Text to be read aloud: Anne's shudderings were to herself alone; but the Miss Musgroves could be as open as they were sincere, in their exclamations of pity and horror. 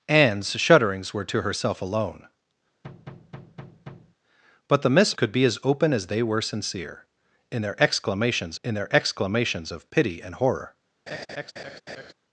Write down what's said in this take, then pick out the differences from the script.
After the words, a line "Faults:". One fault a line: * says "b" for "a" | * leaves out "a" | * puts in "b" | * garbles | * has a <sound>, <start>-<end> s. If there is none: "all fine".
Anne's shudderings were to herself alone; but the Miss Could be as open as they were sincere, in their exclamations in their exclamations of pity and horror.
Faults:
* has a thud, 2.8-4.2 s
* leaves out "Musgroves"
* puts in "in their exclamations"
* has a laugh, 11.1-12.1 s